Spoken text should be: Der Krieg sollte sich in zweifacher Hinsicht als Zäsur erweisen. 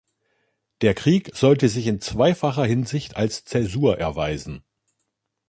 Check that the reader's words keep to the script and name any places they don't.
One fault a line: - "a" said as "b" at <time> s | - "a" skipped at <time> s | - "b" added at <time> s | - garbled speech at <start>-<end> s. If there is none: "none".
none